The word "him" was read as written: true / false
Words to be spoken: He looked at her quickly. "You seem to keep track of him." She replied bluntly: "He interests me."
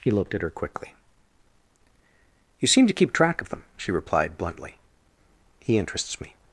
false